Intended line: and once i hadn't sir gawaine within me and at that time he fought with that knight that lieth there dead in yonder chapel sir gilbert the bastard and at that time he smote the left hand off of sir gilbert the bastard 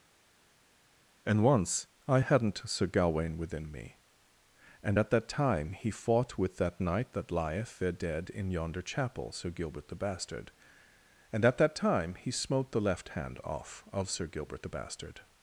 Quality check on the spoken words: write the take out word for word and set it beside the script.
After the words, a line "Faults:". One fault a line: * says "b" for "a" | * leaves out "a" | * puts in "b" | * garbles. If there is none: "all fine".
and once i hadn't sir gawaine within me and at that time he fought with that knight that lieth there dead in yonder chapel sir gilbert the bastard and at that time he smote the left hand off of sir gilbert the bastard
Faults:
all fine